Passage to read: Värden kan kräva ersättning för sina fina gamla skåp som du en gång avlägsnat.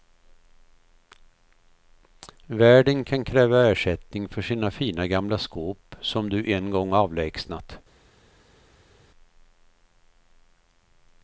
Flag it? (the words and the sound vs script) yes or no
no